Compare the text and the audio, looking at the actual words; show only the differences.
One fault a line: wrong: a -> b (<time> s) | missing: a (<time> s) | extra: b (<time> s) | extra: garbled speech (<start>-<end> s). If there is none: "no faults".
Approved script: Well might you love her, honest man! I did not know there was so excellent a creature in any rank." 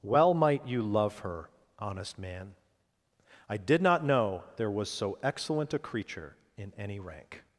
no faults